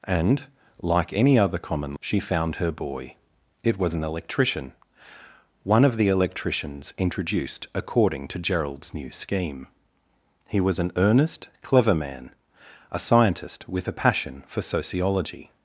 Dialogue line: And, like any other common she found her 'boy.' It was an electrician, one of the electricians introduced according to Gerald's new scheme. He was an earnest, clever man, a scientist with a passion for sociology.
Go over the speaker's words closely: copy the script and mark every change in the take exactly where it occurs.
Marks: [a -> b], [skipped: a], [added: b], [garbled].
And, like any other common she found her 'boy.' It was an electrician, one of the electricians introduced according to Gerald's new scheme. He was an earnest, clever man, a scientist with a passion for sociology.